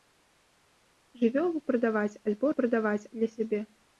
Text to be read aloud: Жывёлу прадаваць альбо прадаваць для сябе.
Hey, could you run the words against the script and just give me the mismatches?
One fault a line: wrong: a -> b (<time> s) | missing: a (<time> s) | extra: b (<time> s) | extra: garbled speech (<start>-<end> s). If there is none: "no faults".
no faults